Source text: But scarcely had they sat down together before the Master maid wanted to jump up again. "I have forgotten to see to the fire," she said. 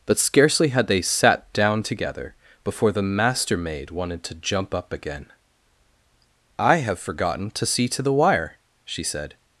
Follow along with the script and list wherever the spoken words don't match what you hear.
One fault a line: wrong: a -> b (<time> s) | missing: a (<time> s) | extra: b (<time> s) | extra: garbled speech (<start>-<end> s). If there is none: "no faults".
wrong: fire -> wire (8.1 s)